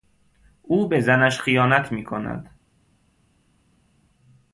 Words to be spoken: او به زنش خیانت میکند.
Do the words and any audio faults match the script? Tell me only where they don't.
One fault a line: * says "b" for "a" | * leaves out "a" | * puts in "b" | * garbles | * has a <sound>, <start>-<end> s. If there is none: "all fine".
all fine